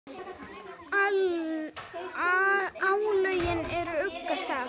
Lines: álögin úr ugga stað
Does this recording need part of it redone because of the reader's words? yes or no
no